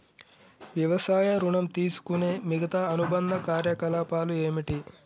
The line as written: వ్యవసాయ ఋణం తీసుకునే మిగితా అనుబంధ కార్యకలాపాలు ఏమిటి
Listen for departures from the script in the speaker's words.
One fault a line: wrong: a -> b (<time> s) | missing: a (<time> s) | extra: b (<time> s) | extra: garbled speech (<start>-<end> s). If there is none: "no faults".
no faults